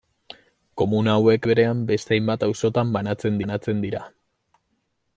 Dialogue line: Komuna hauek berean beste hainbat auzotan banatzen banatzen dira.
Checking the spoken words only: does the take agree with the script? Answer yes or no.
yes